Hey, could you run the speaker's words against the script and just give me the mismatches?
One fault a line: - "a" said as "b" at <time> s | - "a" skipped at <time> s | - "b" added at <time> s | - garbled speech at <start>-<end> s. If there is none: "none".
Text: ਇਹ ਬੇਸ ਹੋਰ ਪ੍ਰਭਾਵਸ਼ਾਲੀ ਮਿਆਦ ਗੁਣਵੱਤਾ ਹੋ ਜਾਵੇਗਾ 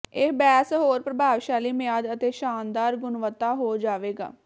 - "ਅਤੇ ਸ਼ਾਨਦਾਰ" added at 2.1 s